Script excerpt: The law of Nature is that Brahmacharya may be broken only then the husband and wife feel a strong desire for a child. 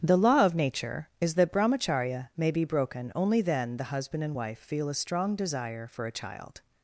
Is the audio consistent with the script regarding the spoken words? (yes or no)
yes